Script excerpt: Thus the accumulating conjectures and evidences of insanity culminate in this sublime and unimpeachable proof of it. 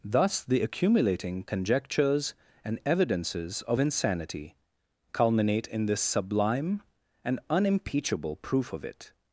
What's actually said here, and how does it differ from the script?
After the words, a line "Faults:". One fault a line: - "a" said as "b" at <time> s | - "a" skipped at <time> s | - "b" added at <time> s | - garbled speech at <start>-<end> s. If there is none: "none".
Thus the accumulating conjectures and evidences of insanity culminate in this sublime and unimpeachable proof of it.
Faults:
none